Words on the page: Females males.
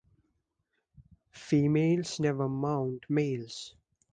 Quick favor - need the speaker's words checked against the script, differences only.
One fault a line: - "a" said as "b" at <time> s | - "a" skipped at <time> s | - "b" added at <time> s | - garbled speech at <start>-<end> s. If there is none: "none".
- "never mount" added at 2.2 s